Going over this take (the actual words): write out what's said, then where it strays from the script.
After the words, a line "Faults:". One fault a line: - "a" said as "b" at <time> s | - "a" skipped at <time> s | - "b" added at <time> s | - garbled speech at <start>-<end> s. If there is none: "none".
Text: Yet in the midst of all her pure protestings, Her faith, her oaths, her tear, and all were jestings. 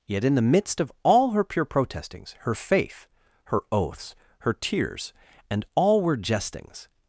Yet in the midst of all her pure protestings, Her faith, her oaths, her tears, and all were jestings.
Faults:
- "tear" said as "tears" at 4.5 s